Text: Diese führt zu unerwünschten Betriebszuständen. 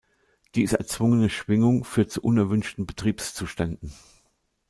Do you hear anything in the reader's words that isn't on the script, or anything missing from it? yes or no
yes